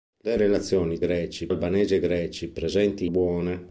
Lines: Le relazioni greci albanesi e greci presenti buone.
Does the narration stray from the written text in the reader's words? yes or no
no